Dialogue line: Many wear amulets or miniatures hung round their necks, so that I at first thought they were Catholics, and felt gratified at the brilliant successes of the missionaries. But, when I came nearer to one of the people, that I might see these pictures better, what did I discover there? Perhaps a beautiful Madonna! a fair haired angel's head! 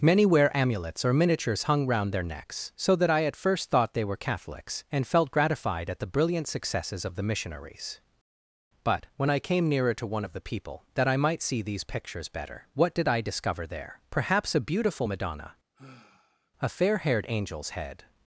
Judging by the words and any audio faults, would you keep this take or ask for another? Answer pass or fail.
fail